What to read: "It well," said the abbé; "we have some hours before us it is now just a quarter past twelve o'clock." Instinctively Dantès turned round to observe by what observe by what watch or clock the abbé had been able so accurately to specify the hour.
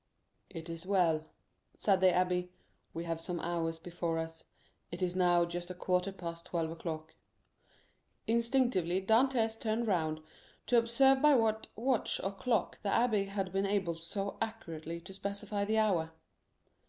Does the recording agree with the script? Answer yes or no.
no